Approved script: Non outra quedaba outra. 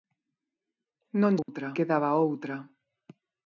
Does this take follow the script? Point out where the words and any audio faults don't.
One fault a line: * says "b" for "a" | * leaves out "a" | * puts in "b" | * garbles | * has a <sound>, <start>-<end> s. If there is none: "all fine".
* has a dropout, 1.4-1.5 s